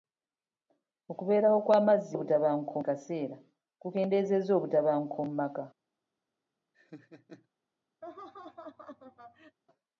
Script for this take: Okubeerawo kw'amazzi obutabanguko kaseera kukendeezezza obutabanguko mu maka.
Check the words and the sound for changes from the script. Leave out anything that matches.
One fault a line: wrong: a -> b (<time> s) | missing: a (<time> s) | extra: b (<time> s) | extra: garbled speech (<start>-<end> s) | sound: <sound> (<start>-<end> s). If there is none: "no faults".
sound: laugh (6.7-7.5 s)
sound: laugh (8.0-9.6 s)